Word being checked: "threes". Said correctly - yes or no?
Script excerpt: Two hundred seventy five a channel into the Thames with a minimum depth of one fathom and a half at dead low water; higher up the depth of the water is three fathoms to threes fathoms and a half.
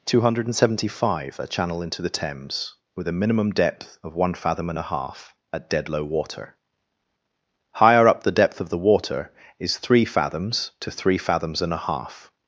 no